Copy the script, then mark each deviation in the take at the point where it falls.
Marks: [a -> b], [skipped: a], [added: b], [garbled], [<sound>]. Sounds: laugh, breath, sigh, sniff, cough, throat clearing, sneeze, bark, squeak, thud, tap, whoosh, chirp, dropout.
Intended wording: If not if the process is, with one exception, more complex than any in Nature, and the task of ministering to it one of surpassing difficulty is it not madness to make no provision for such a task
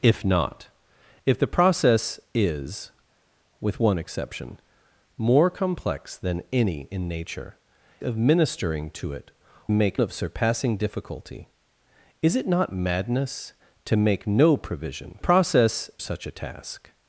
If not if the process is, with one exception, more complex than any in Nature, [skipped: and the task] of ministering to it [one -> make] of surpassing difficulty is it not madness to make no provision [for -> process] such a task